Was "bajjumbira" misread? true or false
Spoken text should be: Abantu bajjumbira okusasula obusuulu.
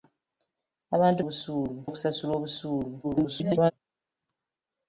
true